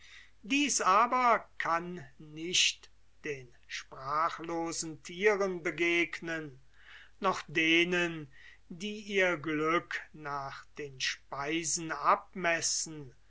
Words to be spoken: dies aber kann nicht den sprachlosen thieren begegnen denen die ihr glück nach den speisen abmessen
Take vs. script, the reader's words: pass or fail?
fail